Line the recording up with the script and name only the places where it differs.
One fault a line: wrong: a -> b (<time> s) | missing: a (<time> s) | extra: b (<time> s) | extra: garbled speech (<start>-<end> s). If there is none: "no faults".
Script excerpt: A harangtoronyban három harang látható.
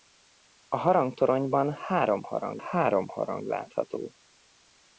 extra: három harang (2.6 s)